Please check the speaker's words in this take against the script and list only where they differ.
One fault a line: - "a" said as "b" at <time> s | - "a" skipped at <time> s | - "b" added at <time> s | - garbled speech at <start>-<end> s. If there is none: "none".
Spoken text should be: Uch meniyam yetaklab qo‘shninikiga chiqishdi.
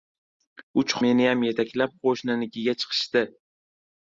none